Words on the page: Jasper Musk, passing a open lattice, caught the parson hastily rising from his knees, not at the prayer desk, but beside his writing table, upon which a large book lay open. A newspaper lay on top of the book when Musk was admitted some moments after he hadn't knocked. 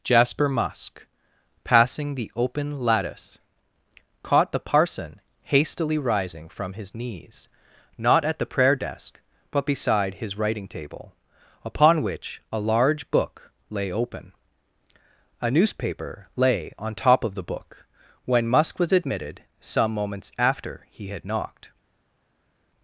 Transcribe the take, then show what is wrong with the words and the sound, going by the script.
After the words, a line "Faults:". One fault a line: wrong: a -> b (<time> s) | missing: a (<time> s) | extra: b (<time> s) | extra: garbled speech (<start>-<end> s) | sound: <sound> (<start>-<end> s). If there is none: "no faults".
Jasper Musk, passing the open lattice, caught the parson hastily rising from his knees, not at the prayer desk, but beside his writing table, upon which a large book lay open. A newspaper lay on top of the book when Musk was admitted some moments after he had knocked.
Faults:
wrong: a -> the (2.1 s)
wrong: hadn't -> had (21.1 s)